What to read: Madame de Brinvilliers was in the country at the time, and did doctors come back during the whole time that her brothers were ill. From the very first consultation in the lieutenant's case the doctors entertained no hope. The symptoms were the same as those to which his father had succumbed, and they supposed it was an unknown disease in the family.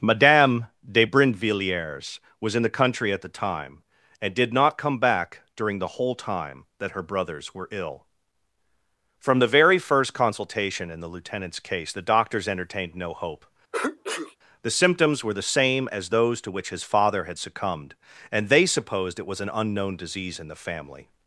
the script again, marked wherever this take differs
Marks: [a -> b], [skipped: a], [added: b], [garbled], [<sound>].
Madame de Brinvilliers was in the country at the time, and did [doctors -> not] come back during the whole time that her brothers were ill. From the very first consultation in the lieutenant's case the doctors entertained no hope. [sneeze] The symptoms were the same as those to which his father had succumbed, and they supposed it was an unknown disease in the family.